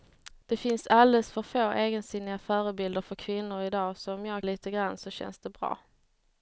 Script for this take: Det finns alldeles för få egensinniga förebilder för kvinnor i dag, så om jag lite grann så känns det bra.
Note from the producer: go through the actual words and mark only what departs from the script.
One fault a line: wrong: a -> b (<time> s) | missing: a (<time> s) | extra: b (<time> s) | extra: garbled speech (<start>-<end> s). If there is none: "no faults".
no faults